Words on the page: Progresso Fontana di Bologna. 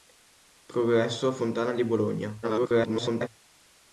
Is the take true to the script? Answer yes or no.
no